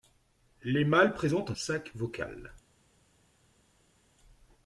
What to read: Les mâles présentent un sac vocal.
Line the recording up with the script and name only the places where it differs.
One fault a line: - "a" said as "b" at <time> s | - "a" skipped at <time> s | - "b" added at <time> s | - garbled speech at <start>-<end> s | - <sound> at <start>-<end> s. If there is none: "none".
none